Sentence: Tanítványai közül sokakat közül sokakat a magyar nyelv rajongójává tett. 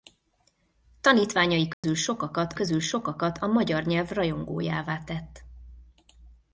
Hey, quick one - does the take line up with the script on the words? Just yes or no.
yes